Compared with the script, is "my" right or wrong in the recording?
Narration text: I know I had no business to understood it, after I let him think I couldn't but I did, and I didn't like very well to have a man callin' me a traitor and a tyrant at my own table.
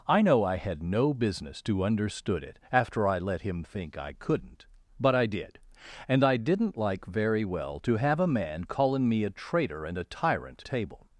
wrong